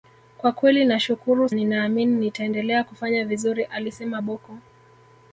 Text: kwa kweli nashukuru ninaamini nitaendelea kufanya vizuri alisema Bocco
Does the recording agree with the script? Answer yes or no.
yes